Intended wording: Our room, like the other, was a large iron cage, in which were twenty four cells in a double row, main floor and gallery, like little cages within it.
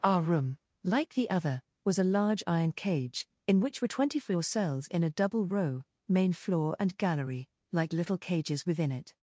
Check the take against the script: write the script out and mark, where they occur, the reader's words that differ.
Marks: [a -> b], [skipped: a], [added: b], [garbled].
Our room, like the other, was a large iron cage, in which were twenty four cells in a double row, main floor and gallery, like little cages within it.